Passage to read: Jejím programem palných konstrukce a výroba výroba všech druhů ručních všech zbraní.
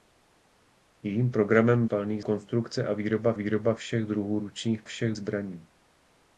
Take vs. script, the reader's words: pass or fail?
pass